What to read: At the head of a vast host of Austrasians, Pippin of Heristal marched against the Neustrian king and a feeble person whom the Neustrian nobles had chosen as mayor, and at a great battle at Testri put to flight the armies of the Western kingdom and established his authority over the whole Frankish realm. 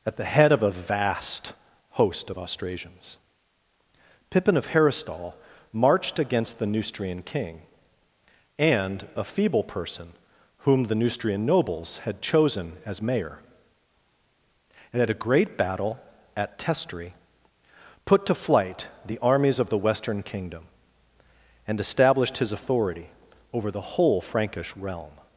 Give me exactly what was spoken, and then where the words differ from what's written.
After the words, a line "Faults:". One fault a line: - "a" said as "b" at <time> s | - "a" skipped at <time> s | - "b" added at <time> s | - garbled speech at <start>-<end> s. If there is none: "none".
At the head of a vast host of Austrasians, Pippin of Heristal marched against the Neustrian king and a feeble person whom the Neustrian nobles had chosen as mayor, and at a great battle at Testri put to flight the armies of the Western kingdom and established his authority over the whole Frankish realm.
Faults:
none